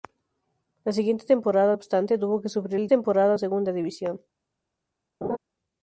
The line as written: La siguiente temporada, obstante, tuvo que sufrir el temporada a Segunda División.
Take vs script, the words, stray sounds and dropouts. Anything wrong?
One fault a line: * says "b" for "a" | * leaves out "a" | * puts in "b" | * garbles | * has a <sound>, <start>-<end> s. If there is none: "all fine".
* has a laugh, 5.2-5.4 s